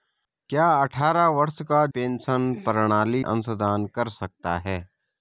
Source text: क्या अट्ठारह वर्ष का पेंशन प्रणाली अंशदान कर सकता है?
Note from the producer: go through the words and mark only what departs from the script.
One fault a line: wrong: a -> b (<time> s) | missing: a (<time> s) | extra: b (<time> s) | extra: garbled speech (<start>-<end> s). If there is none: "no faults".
no faults